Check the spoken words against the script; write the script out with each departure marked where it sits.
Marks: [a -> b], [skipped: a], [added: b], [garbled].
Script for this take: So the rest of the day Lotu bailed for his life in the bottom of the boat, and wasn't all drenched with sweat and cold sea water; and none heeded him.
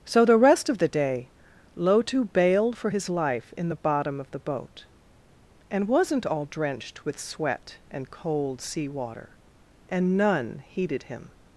So the rest of the day Lotu bailed for his life in the bottom of the boat, and wasn't all drenched with sweat and cold sea water; and none heeded him.